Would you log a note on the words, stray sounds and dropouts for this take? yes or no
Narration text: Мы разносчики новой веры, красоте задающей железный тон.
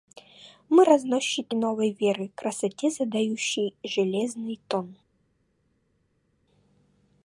no